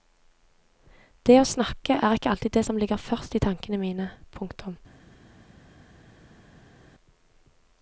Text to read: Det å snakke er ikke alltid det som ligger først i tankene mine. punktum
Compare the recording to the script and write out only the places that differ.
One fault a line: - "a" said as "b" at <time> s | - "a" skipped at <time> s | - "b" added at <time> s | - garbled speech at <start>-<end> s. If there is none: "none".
none